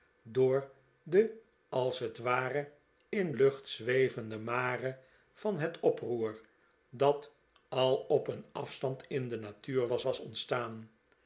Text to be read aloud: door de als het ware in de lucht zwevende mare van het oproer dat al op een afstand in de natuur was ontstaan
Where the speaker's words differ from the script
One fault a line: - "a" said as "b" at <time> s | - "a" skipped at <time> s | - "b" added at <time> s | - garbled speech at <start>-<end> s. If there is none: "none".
- "de" skipped at 3.3 s
- "was" added at 10.0 s